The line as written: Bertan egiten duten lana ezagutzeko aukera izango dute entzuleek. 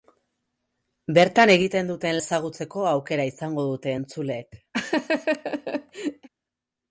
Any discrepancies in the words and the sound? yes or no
yes